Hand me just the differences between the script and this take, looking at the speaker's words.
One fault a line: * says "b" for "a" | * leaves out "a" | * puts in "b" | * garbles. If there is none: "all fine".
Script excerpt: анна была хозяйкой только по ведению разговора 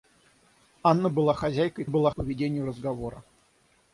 * says "была" for "только"